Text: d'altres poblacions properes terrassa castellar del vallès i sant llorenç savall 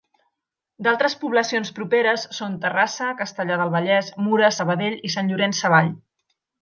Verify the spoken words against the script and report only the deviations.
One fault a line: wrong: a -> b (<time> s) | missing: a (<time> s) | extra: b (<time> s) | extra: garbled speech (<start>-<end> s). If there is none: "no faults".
extra: són (2.4 s)
extra: mura sabadell (4.3 s)